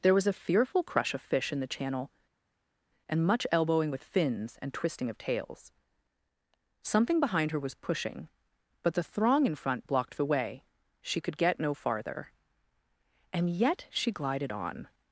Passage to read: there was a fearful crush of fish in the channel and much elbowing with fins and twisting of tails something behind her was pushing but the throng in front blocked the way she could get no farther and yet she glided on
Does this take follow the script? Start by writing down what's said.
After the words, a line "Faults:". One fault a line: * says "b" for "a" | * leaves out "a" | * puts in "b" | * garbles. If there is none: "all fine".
there was a fearful crush of fish in the channel and much elbowing with fins and twisting of tails something behind her was pushing but the throng in front blocked the way she could get no farther and yet she glided on
Faults:
all fine